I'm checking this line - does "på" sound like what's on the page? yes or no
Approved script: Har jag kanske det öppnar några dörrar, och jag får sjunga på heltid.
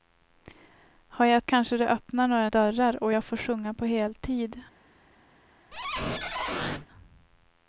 yes